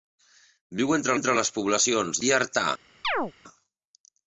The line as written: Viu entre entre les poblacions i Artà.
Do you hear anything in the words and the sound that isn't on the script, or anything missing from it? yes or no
yes